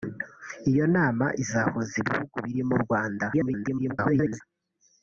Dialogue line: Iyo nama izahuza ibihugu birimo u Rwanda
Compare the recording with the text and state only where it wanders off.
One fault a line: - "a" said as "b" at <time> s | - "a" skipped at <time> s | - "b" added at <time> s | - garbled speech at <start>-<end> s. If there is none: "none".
- garbled speech at 3.3-4.4 s